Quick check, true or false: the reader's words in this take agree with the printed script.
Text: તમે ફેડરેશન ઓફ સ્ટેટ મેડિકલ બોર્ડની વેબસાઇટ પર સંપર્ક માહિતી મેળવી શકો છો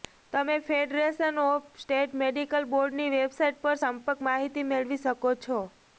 true